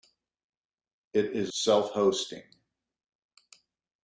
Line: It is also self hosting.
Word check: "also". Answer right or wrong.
wrong